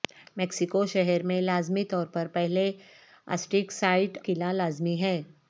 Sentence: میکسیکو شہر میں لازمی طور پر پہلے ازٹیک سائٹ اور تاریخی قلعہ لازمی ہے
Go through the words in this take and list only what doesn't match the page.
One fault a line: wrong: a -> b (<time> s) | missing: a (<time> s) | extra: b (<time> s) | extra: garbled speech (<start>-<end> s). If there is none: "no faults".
missing: اور تاریخی (4.2 s)